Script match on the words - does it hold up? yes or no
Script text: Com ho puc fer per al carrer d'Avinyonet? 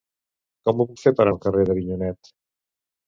yes